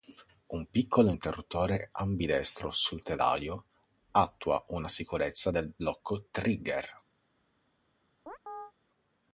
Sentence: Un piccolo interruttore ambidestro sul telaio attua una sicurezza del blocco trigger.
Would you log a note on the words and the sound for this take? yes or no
yes